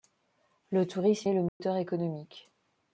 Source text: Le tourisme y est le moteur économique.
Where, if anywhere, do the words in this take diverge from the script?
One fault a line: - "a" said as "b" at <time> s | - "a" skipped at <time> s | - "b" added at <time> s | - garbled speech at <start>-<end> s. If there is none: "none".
- "y" skipped at 1.3 s